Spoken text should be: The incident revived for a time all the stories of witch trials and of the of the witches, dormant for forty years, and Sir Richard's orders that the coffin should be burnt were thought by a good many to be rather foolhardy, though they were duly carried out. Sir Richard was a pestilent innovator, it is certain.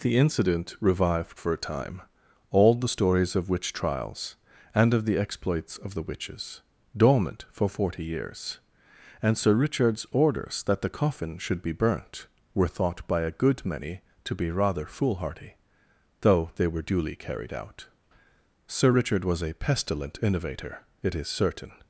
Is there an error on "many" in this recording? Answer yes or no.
no